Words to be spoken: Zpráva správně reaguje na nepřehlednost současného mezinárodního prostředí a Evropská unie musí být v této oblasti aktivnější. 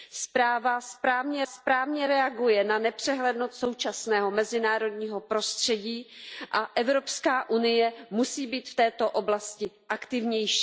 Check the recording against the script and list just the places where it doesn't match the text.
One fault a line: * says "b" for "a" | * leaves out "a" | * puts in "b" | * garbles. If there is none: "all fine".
* puts in "správně"